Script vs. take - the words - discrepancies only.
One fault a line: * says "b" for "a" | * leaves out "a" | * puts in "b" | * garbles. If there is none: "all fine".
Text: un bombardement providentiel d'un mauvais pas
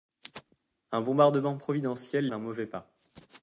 all fine